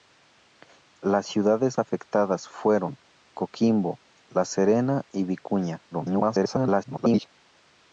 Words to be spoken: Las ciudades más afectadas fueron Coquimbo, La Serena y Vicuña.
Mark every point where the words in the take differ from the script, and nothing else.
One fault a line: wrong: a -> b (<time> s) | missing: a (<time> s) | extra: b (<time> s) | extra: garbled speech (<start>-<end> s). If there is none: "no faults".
missing: más (1.8 s)
extra: garbled speech (5.9-7.3 s)